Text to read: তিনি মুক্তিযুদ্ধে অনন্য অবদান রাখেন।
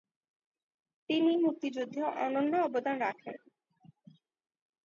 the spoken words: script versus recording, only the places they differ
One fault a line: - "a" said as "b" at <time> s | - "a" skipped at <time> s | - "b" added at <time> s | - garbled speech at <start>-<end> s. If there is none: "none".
none